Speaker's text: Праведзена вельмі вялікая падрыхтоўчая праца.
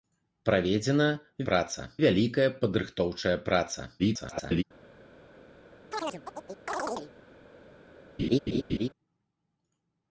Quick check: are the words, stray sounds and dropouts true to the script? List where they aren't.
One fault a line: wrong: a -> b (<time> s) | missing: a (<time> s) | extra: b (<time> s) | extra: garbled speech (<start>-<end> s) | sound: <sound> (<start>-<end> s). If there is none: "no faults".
wrong: вельмі -> праца (1.5 s)
extra: garbled speech (4.0-4.6 s)
sound: chirp (5.9-7.1 s)
sound: laugh (8.2-8.9 s)